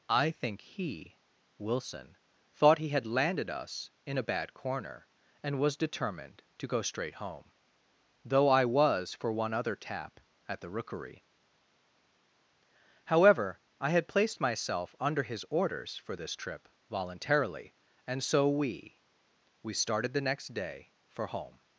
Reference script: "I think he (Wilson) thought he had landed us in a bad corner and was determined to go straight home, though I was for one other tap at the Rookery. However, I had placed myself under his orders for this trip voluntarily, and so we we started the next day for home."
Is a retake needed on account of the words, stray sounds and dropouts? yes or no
no